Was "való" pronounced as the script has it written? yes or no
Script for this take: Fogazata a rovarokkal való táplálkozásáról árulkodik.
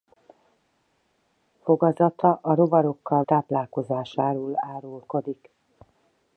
no